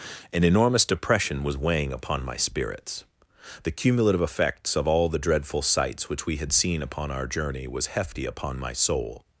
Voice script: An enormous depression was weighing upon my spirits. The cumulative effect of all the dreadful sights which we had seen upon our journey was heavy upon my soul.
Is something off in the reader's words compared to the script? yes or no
yes